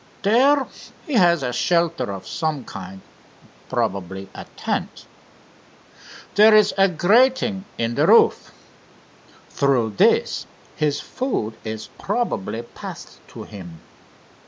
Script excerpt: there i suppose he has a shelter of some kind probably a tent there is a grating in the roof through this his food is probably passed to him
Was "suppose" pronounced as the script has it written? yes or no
no